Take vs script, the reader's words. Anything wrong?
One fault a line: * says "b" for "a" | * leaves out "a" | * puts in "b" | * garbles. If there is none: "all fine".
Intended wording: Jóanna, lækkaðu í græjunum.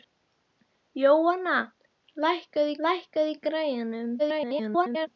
* puts in "lækkaðu"
* garbles